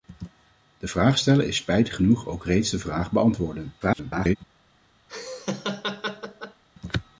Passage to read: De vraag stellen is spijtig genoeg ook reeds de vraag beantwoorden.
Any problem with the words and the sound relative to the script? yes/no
yes